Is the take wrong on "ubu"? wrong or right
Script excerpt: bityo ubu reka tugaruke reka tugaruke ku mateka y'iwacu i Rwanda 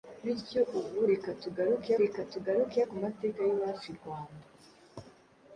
right